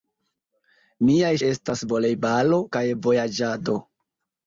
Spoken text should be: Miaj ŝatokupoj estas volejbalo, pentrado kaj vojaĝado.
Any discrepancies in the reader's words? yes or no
yes